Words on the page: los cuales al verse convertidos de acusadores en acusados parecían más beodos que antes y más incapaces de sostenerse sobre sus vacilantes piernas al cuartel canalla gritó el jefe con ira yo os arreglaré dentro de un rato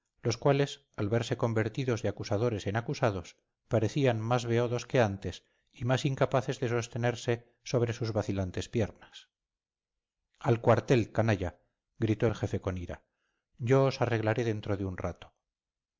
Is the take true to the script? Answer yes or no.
yes